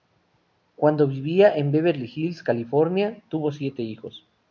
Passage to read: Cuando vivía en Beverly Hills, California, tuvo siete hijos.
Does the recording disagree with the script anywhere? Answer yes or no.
no